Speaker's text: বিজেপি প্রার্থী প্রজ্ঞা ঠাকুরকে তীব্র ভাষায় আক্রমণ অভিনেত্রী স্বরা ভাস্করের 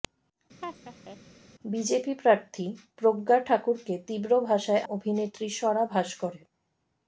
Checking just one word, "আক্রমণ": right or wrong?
wrong